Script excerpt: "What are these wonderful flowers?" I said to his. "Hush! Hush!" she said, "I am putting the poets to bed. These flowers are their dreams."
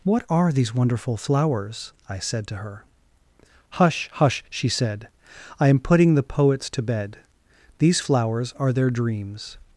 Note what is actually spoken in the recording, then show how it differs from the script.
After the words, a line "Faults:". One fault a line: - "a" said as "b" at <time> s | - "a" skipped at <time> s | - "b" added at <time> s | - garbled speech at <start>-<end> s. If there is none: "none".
"What are these wonderful flowers?" I said to her. "Hush! Hush!" she said, "I am putting the poets to bed. These flowers are their dreams."
Faults:
- "his" said as "her" at 2.6 s